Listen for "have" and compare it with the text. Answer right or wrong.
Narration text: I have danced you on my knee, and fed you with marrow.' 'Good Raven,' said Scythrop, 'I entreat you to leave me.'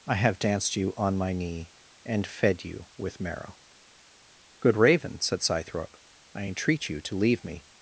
right